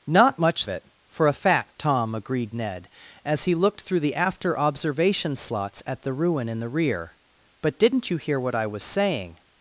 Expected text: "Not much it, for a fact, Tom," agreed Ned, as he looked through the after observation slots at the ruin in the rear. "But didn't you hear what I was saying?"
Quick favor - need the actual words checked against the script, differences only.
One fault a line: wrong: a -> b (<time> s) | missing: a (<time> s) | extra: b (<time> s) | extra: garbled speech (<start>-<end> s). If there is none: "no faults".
no faults